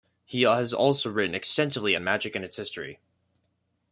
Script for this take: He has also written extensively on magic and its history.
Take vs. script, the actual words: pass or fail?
pass